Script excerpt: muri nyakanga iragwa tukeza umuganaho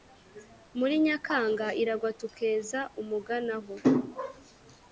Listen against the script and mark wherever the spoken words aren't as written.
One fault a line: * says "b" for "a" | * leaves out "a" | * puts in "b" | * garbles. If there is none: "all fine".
all fine